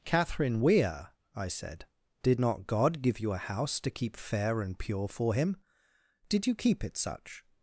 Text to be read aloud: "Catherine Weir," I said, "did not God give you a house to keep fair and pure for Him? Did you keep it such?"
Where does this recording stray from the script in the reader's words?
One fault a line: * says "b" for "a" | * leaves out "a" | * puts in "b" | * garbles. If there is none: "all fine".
all fine